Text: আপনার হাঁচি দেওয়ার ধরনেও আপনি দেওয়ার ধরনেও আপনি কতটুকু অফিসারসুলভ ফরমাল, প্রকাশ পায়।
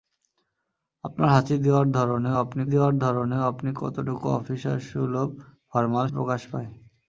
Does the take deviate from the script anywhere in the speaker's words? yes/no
no